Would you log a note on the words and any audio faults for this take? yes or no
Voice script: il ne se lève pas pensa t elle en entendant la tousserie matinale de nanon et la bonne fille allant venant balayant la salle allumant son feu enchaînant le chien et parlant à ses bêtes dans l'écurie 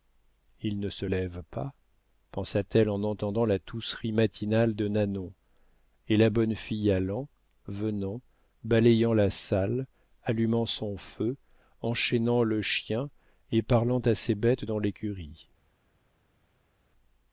no